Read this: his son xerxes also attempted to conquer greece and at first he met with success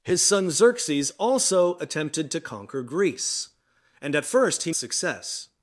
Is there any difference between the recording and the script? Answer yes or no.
yes